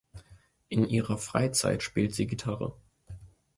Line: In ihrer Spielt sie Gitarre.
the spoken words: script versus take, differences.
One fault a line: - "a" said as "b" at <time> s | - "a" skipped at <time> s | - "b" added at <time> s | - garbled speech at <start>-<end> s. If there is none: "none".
- "Freizeit" added at 1.2 s